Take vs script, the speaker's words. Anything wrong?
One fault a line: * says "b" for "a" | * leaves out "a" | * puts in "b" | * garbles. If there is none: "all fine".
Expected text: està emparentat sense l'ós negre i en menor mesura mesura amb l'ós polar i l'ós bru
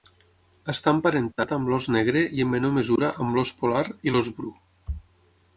* says "amb" for "sense"
* leaves out "mesura"